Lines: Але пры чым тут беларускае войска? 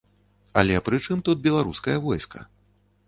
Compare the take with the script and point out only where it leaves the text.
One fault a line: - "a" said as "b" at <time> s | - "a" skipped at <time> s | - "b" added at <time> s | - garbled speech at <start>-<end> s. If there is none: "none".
none